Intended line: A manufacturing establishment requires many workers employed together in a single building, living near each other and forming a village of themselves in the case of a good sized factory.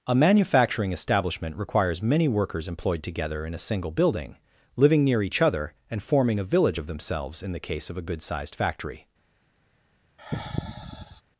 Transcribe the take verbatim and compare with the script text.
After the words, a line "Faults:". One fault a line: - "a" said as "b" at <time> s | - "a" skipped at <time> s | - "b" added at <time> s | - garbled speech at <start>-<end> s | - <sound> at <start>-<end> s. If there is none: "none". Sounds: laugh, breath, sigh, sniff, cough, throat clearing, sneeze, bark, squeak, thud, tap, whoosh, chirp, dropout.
A manufacturing establishment requires many workers employed together in a single building, living near each other and forming a village of themselves in the case of a good sized factory.
Faults:
- sigh at 10.2-11.2 s